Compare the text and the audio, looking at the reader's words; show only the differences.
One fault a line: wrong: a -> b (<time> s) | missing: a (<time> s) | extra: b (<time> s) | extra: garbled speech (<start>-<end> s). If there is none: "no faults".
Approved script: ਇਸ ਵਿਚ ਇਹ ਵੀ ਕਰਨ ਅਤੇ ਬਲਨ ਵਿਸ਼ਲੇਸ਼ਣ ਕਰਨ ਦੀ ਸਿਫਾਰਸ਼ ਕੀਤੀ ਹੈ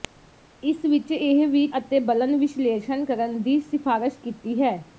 missing: ਕਰਨ (1.6 s)